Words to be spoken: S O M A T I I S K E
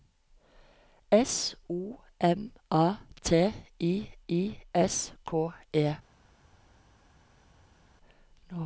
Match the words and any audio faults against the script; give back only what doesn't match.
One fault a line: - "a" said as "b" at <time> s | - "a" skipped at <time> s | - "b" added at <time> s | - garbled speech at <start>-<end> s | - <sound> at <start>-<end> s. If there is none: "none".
none